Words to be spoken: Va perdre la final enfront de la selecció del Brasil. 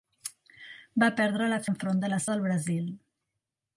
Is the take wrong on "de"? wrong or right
right